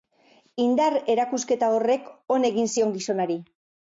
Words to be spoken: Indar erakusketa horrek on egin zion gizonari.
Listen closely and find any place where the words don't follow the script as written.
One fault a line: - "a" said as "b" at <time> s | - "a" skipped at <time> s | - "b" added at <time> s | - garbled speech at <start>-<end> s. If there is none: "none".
none